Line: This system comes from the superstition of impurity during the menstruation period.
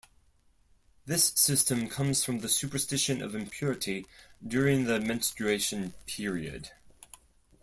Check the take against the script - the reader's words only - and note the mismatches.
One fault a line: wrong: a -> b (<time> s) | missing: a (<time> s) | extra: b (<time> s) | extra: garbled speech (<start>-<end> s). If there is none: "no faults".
no faults